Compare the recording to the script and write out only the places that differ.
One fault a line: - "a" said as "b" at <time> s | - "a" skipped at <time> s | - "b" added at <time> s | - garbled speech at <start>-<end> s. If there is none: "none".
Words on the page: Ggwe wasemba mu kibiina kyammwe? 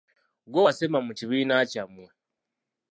none